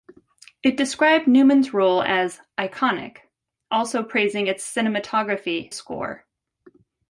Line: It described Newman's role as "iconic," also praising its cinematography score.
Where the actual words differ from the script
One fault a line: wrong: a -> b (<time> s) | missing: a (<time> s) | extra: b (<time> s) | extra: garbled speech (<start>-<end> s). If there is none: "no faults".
no faults